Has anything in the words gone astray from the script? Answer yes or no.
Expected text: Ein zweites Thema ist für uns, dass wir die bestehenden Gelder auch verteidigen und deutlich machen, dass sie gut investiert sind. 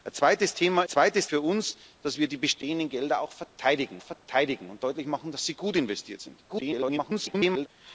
yes